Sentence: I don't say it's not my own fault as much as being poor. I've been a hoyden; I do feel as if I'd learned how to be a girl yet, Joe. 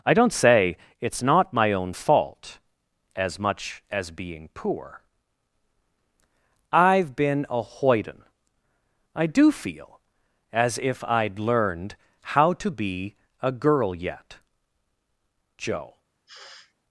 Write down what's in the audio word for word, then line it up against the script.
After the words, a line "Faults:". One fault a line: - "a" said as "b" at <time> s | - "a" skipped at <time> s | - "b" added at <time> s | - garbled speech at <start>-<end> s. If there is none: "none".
I don't say it's not my own fault as much as being poor. I've been a hoyden; I do feel as if I'd learned how to be a girl yet, Joe.
Faults:
none